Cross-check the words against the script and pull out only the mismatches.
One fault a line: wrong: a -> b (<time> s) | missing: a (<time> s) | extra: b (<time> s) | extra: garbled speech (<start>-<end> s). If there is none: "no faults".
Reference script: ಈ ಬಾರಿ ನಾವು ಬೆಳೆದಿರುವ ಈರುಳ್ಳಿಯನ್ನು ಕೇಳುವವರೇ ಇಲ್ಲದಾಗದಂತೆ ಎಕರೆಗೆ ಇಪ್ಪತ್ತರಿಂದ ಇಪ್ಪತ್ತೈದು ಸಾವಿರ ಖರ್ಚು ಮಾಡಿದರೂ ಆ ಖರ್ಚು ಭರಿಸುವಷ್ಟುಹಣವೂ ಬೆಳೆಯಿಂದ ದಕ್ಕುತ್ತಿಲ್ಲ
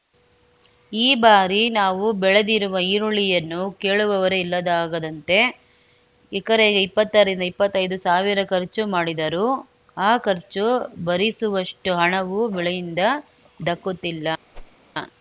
no faults